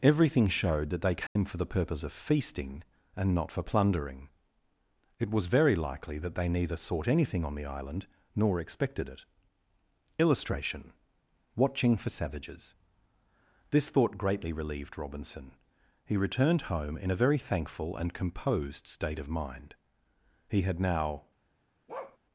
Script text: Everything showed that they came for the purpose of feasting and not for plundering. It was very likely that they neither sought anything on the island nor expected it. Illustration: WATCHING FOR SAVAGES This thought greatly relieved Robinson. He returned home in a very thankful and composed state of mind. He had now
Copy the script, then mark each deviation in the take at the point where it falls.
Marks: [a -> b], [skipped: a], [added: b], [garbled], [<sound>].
Everything showed that they came [dropout] for the purpose of feasting and not for plundering. It was very likely that they neither sought anything on the island nor expected it. Illustration: WATCHING FOR SAVAGES This thought greatly relieved Robinson. He returned home in a very thankful and composed state of mind. He had now [bark]